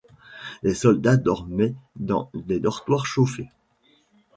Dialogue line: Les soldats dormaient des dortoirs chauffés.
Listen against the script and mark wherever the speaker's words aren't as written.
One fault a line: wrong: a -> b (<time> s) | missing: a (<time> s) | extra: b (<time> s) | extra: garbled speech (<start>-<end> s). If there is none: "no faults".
extra: dans (1.9 s)